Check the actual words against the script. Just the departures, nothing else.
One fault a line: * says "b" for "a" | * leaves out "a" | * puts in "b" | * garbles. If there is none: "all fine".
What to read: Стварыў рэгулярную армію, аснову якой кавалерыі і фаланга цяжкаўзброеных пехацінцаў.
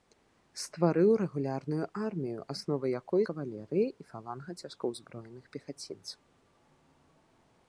all fine